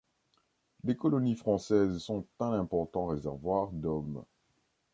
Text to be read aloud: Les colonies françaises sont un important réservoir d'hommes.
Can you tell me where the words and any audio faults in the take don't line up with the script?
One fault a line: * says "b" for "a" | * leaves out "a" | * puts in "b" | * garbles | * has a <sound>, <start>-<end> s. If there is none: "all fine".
all fine